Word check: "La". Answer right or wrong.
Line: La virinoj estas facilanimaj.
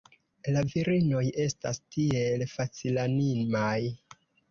right